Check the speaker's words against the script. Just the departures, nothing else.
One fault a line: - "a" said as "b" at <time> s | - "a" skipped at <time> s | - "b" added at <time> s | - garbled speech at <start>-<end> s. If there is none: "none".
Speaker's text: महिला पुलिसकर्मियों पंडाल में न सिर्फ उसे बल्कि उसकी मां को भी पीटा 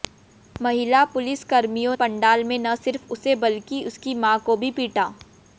none